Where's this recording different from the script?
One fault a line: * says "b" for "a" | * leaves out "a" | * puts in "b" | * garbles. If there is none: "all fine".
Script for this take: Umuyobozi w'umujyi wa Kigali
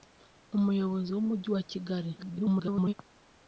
* garbles